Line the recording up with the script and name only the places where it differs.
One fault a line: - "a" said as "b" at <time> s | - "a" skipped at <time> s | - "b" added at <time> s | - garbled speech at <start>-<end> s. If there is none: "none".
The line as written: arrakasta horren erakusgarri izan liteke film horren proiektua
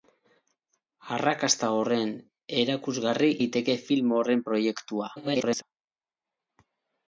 - "izan" skipped at 3.3 s
- garbled speech at 5.2-5.6 s